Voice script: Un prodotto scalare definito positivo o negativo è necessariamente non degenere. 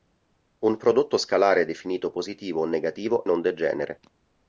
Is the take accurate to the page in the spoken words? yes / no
no